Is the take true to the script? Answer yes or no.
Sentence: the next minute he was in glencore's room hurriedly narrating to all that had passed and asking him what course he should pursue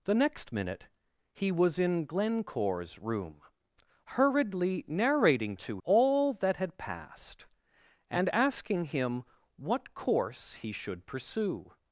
yes